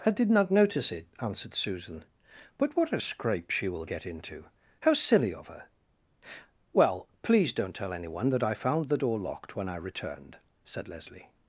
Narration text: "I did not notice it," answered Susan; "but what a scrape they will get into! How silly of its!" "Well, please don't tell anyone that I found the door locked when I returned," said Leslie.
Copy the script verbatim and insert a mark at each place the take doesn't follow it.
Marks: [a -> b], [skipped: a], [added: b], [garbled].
"I did not notice it," answered Susan; "but what a scrape [they -> she] will get into! How silly of [its!" -> her] "Well, please don't tell anyone that I found the door locked when I returned," said Leslie.